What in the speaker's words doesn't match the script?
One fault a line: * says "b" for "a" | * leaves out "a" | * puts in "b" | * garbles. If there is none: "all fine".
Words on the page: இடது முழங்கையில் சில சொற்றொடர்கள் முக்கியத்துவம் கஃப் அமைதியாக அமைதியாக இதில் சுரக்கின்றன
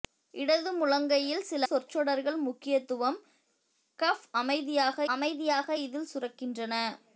all fine